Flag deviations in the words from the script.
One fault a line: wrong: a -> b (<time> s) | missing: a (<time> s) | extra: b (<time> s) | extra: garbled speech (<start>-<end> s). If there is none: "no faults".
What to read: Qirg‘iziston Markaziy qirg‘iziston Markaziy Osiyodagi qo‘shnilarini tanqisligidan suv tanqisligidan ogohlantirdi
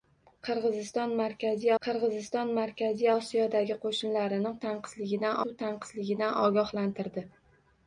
no faults